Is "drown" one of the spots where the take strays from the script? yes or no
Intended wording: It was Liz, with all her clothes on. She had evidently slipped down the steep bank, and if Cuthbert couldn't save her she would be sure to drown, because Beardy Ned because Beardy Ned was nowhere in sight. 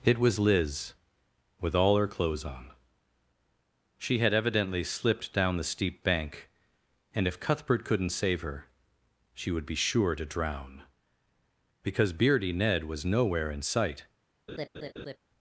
no